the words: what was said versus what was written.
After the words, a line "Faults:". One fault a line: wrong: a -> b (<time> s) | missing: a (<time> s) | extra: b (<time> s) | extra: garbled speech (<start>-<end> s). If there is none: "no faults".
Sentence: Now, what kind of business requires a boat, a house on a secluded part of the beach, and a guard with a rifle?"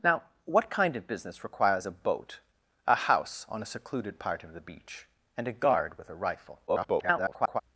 Now, what kind of business requires a boat, a house on a secluded part of the beach, and a guard with a rifle?" [garbled]
Faults:
extra: garbled speech (6.7-7.6 s)